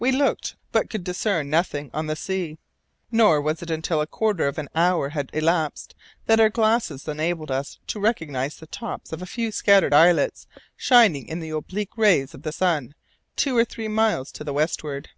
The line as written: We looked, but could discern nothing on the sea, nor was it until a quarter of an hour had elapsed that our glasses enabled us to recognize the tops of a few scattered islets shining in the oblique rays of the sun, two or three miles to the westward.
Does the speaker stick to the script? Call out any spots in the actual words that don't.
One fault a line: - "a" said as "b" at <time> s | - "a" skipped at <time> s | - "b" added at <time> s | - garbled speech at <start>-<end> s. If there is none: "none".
none